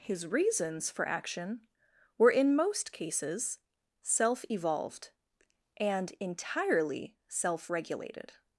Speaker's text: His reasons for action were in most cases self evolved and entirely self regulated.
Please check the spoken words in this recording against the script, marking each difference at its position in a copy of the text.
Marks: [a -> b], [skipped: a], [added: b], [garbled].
His reasons for action were in most cases self evolved and entirely self regulated.